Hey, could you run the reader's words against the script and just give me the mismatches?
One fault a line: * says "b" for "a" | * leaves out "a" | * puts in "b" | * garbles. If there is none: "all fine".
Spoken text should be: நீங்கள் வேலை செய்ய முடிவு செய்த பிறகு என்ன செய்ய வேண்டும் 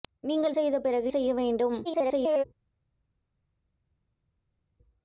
* leaves out "வேலை செய்ய முடிவு"
* leaves out "என்ன"
* garbles